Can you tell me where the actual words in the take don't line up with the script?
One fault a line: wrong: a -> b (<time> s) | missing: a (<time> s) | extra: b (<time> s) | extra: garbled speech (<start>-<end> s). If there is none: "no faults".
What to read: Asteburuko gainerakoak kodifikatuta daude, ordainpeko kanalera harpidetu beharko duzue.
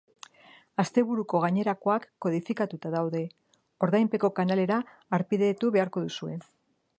no faults